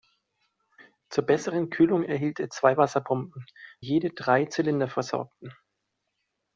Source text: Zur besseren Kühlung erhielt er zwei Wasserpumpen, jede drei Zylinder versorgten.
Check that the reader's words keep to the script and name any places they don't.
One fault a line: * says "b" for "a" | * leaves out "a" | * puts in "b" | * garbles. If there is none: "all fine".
all fine